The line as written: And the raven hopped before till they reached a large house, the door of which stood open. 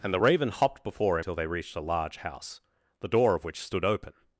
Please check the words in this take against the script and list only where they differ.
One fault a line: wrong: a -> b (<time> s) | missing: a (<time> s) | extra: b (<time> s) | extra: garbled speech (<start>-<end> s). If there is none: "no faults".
no faults